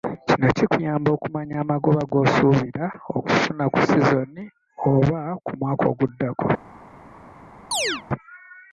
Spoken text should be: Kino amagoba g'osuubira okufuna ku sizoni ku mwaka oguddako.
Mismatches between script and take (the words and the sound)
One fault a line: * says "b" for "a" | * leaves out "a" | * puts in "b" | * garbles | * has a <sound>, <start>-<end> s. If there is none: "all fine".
* puts in "kikuyamba okumanya"
* puts in "oba"
* has a chirp, 7.7-8.0 s